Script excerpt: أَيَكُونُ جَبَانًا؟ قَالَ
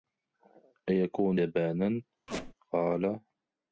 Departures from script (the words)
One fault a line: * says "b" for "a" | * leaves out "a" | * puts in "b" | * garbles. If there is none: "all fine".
all fine